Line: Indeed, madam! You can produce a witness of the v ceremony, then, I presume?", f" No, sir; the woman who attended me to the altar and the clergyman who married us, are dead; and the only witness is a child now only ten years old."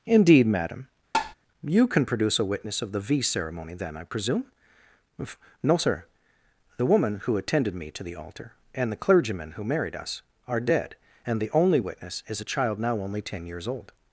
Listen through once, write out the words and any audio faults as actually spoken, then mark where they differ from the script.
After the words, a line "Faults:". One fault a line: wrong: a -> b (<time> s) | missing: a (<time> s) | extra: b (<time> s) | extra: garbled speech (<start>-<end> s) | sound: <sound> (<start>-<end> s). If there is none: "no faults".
Indeed, madam! You can produce a witness of the v ceremony, then, I presume" No, sir; the woman who attended me to the altar and the clergyman who married us, are dead; and the only witness is a child now only ten years old."
Faults:
sound: tap (1.1-1.3 s)
missing: f (4.5 s)